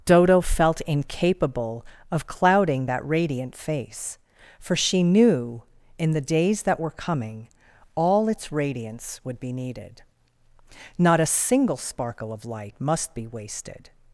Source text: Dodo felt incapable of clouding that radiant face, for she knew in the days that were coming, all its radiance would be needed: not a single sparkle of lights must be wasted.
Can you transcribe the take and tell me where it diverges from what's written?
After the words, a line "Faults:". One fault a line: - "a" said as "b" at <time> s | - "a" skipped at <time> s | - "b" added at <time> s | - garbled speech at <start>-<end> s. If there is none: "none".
Dodo felt incapable of clouding that radiant face, for she knew in the days that were coming, all its radiance would be needed: not a single sparkle of light must be wasted.
Faults:
- "lights" said as "light" at 12.5 s